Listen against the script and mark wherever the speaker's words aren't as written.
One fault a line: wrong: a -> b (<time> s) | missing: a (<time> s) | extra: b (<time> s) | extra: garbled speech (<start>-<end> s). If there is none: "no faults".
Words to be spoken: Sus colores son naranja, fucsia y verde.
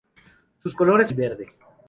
missing: son naranja fucsia (1.1 s)